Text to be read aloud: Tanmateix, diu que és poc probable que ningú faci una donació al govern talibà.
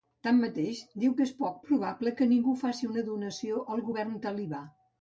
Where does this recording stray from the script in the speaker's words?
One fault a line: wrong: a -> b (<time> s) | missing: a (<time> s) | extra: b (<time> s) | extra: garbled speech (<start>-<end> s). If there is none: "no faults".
no faults